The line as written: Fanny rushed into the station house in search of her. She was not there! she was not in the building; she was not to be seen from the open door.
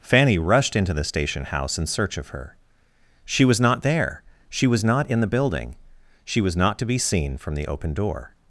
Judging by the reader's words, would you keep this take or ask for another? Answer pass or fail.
pass